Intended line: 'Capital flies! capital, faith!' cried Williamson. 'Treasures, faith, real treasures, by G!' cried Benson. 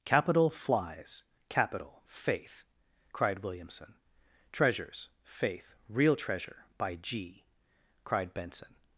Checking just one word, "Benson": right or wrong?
right